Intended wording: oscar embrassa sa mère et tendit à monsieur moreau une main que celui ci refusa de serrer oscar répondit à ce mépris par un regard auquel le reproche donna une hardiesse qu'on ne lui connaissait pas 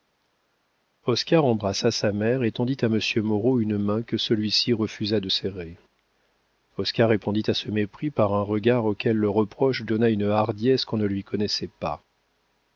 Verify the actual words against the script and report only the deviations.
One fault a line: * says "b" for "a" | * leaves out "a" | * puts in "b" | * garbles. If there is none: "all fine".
all fine